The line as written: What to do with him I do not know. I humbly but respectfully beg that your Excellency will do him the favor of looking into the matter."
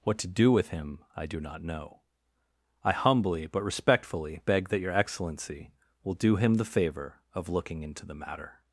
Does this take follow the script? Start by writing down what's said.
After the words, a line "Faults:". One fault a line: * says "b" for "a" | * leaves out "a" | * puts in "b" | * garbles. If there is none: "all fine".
What to do with him I do not know. I humbly but respectfully beg that your Excellency will do him the favor of looking into the matter."
Faults:
all fine